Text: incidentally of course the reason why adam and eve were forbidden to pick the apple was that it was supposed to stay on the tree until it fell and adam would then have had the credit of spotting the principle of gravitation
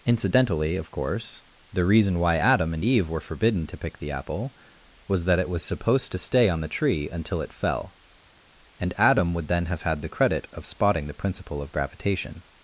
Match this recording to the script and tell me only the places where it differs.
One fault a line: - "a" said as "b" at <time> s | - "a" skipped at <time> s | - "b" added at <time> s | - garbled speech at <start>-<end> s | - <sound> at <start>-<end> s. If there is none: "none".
none